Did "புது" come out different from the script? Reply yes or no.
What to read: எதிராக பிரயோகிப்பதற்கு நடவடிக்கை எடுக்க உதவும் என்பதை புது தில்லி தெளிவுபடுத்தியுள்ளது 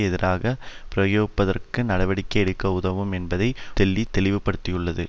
yes